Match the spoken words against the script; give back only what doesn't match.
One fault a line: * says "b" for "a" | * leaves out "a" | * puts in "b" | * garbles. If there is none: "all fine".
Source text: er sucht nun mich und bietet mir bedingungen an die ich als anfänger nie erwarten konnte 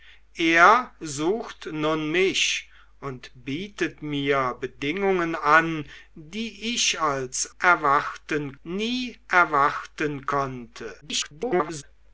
* says "erwarten" for "anfänger"
* garbles